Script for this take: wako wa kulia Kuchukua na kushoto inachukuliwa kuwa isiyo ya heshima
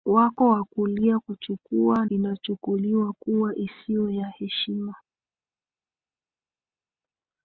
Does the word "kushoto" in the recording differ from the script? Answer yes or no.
yes